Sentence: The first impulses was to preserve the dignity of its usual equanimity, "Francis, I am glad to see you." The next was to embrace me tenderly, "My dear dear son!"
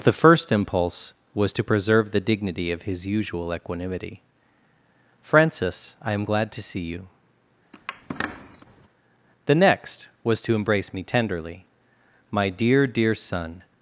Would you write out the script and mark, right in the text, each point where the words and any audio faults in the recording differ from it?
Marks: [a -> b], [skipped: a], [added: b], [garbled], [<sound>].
The first [impulses -> impulse] was to preserve the dignity of [its -> his] usual equanimity, "Francis, I am glad to see you." [squeak] The next was to embrace me tenderly, "My dear dear son!"